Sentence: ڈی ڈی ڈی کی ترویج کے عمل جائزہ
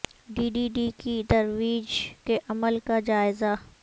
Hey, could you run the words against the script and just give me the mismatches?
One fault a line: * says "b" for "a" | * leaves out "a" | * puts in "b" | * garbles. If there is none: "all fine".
* puts in "کا"